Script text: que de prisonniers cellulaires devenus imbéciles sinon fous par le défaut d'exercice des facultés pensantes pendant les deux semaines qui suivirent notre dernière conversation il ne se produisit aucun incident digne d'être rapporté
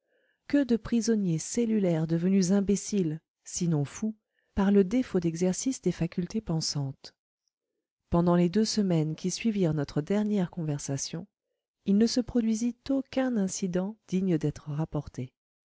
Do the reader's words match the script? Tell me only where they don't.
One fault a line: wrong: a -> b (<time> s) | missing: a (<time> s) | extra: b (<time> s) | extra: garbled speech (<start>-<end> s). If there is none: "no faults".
no faults